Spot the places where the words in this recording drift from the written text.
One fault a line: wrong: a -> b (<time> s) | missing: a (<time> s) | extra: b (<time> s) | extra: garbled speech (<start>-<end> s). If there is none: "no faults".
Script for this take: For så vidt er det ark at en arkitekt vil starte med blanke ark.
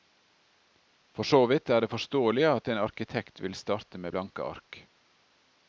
wrong: ark -> forståelig (1.9 s)